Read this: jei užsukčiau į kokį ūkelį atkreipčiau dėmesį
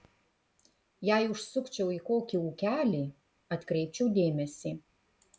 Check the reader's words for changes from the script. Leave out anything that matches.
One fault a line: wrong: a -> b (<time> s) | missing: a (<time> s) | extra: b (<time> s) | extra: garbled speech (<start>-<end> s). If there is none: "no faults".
no faults